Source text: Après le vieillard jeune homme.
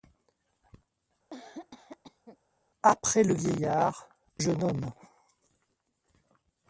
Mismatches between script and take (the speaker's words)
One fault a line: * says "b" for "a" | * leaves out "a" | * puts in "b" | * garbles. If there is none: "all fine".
all fine